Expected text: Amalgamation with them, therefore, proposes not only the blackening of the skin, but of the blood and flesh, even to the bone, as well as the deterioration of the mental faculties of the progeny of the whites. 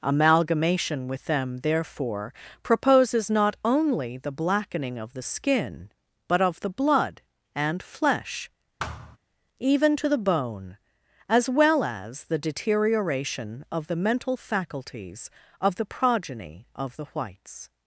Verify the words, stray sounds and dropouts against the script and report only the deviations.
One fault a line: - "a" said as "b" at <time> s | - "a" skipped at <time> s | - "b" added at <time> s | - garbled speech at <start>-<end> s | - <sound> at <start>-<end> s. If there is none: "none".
- thud at 8.8-9.2 s